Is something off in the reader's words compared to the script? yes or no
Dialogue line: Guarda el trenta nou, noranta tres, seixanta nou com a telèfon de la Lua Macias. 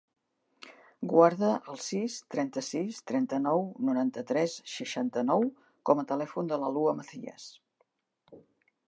yes